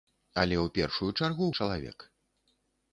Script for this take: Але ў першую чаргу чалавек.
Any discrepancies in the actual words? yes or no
no